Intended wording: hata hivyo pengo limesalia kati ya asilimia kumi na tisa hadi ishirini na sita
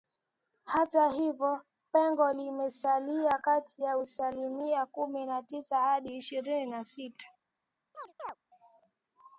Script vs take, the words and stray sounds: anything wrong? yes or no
yes